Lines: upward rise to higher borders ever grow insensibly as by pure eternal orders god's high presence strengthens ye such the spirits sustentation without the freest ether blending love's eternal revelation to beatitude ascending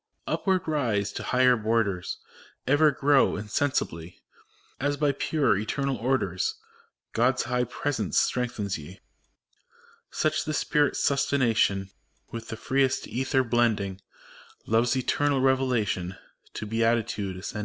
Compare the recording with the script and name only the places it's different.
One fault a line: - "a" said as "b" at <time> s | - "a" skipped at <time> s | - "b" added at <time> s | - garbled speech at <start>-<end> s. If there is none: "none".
- "without" said as "with" at 12.3 s